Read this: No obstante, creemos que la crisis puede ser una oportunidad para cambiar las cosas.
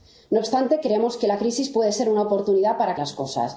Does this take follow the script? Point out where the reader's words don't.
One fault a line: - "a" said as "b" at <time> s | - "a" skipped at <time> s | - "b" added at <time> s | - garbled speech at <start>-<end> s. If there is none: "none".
- "cambiar" skipped at 3.0 s